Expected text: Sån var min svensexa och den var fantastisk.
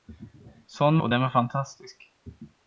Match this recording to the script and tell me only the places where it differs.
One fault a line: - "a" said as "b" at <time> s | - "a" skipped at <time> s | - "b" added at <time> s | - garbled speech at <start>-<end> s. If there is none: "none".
- "var min svensexa" skipped at 1.0 s